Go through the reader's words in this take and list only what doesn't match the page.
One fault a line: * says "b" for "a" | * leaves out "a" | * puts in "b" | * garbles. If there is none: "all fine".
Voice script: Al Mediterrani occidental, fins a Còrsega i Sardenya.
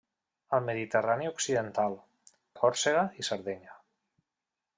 * leaves out "fins"